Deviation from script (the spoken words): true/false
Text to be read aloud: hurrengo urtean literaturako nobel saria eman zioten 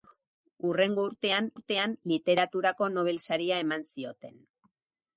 true